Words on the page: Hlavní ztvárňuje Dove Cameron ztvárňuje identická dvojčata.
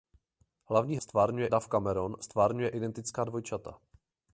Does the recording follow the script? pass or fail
pass